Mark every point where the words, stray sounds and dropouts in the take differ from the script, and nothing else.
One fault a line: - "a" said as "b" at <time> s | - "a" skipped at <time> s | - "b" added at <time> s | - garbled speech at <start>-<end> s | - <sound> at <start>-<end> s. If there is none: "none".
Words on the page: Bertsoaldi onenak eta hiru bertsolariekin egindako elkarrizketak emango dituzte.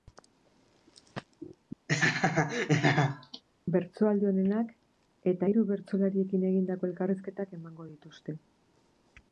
- laugh at 1.9-3.4 s